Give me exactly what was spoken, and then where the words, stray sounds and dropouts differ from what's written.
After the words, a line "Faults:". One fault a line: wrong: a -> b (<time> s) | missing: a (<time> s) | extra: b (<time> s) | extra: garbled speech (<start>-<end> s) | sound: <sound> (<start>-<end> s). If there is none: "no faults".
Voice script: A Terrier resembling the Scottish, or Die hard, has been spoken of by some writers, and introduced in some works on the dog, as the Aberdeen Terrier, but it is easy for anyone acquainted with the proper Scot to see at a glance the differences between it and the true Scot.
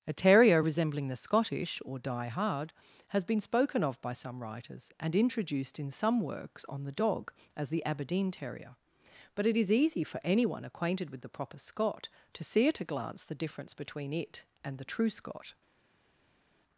A Terrier resembling the Scottish, or Die hard, has been spoken of by some writers, and introduced in some works on the dog, as the Aberdeen Terrier, but it is easy for anyone acquainted with the proper Scot to see at a glance the difference between it and the true Scot.
Faults:
wrong: differences -> difference (13.3 s)